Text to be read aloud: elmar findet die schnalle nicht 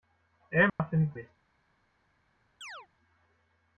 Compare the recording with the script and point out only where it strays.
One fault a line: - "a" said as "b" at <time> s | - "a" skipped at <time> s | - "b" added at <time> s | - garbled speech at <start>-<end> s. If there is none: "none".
- "die schnalle" skipped at 1.1 s